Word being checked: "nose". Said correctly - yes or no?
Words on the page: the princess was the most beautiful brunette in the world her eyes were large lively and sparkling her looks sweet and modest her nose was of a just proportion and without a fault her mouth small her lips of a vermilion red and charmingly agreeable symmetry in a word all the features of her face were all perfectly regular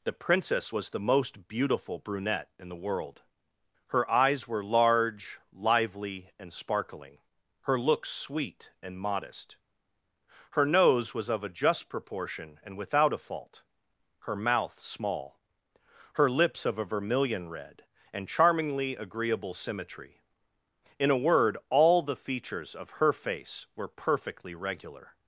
yes